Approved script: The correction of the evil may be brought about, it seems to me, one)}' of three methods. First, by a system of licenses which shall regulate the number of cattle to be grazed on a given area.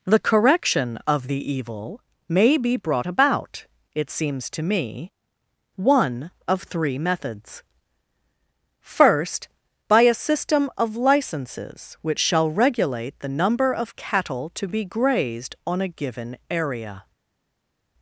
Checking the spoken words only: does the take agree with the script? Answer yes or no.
yes